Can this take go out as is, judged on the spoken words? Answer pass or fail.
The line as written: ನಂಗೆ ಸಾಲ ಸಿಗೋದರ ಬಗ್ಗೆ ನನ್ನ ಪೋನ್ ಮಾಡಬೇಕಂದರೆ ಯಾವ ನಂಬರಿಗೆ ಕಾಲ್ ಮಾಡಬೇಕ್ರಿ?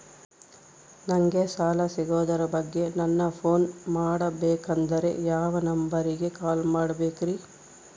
pass